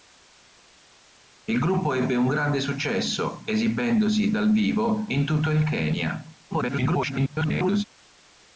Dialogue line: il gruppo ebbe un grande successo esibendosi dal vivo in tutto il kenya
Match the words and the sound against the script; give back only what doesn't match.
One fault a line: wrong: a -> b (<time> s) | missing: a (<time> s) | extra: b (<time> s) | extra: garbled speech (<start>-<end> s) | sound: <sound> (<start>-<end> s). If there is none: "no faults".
extra: garbled speech (6.5-7.8 s)